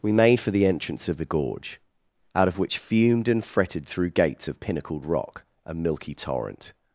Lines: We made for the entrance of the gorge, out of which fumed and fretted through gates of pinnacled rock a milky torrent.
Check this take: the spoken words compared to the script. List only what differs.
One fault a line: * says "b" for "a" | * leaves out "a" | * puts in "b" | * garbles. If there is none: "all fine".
all fine